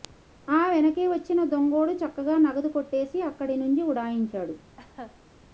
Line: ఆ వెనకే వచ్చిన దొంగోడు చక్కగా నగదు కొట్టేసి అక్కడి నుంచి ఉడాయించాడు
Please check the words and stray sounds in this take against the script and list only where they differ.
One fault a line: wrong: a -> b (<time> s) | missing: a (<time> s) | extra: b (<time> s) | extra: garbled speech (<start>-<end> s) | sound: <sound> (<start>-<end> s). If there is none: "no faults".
sound: laugh (4.8-5.2 s)